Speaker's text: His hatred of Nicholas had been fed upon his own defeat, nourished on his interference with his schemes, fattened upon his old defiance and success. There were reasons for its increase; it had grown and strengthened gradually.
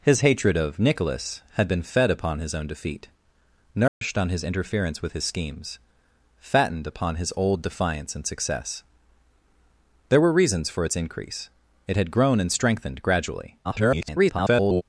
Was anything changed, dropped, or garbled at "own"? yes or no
no